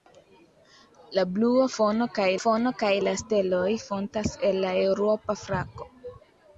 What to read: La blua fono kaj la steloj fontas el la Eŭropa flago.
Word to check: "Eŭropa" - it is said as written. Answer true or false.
true